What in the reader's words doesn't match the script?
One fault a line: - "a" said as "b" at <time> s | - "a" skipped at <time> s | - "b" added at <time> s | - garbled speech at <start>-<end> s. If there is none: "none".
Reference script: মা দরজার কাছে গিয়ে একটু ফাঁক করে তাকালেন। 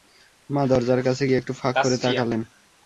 none